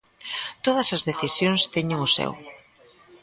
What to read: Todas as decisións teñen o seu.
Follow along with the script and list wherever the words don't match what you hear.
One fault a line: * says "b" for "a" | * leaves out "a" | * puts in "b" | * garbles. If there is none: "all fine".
all fine